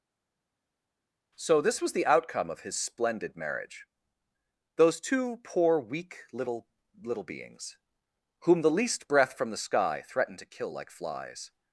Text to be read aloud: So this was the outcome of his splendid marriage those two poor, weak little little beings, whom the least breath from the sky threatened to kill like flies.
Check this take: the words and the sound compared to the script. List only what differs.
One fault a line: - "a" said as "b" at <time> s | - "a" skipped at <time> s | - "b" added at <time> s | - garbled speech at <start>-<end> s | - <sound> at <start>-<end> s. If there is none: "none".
none